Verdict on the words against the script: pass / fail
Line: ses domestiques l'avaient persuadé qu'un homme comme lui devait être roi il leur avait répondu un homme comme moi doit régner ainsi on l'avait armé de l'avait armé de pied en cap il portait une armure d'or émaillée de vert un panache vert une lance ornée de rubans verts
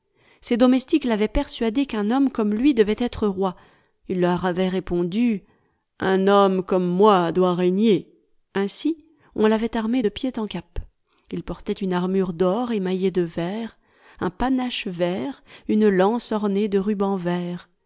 fail